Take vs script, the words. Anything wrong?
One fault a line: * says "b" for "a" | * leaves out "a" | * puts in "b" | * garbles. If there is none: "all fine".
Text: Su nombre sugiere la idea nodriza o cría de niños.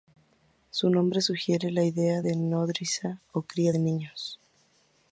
* puts in "de"